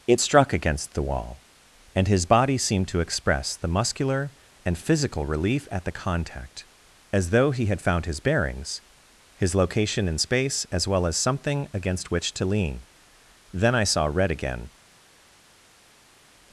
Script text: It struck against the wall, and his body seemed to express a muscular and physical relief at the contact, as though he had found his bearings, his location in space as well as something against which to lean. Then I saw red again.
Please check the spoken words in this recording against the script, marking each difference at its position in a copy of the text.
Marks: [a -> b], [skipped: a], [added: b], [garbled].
It struck against the wall, and his body seemed to express [a -> the] muscular and physical relief at the contact, as though he had found his bearings, his location in space as well as something against which to lean. Then I saw red again.